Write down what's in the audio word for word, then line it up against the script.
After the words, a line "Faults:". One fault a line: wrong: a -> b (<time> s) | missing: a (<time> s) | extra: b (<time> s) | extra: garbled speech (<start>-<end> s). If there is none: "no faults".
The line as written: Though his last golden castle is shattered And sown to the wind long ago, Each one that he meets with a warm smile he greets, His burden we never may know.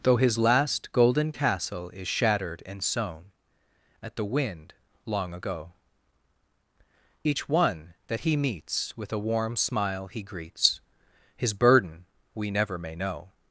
Though his last golden castle is shattered And sown at the wind long ago, Each one that he meets with a warm smile he greets, His burden we never may know.
Faults:
wrong: to -> at (4.0 s)